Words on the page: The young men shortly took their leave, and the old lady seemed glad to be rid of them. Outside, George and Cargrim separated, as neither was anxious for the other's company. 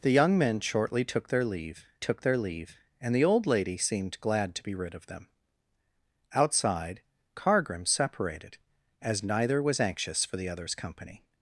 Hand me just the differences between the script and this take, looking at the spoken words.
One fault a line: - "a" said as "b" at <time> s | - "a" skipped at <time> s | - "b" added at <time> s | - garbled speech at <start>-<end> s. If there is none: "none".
- "took their leave" added at 2.0 s
- "George and" skipped at 7.0 s